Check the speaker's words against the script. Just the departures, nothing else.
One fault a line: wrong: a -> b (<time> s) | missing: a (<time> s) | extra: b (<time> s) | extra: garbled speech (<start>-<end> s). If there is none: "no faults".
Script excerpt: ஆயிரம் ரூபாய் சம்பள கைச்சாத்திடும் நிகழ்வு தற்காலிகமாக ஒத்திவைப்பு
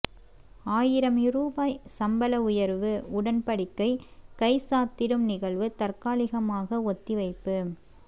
extra: உயர்வு உடன்படிக்கை (2.4 s)